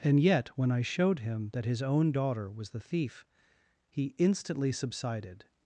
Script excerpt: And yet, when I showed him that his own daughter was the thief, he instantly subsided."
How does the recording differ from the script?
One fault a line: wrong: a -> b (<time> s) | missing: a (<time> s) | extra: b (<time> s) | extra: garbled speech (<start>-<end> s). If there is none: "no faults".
no faults